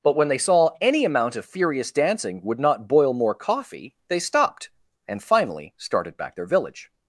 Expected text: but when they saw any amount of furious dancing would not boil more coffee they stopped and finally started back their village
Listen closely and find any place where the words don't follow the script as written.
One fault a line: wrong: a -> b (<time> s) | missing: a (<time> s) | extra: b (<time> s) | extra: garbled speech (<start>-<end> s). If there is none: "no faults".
no faults